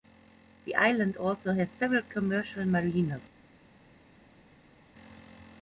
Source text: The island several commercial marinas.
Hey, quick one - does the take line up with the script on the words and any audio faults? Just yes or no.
no